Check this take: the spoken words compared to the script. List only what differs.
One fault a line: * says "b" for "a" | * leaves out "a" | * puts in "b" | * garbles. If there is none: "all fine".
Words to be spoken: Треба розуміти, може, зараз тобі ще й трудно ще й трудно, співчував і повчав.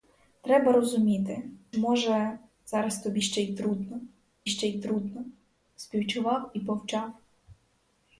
all fine